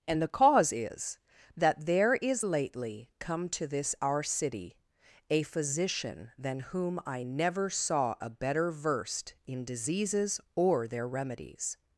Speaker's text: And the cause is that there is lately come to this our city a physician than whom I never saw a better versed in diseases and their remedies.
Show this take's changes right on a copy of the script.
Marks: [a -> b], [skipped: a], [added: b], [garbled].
And the cause is that there is lately come to this our city a physician than whom I never saw a better versed in diseases [and -> or] their remedies.